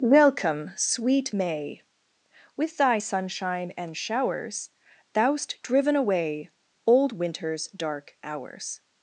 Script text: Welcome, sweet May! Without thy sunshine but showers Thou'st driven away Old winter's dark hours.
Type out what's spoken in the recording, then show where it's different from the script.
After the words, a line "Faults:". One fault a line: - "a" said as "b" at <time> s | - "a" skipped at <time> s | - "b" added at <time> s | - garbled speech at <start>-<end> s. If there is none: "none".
Welcome, sweet May! With thy sunshine and showers Thou'st driven away Old winter's dark hours.
Faults:
- "Without" said as "With" at 2.5 s
- "but" said as "and" at 3.8 s